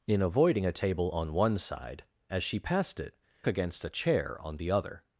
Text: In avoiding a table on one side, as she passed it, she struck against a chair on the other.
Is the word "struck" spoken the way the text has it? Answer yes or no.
no